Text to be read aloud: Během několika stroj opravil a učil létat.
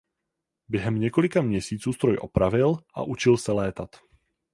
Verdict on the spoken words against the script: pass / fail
fail